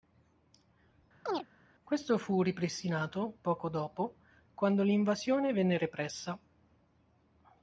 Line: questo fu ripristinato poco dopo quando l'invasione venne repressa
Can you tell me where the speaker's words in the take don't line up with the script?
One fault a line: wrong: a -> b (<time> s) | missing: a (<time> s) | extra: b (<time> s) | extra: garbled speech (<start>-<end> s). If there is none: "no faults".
no faults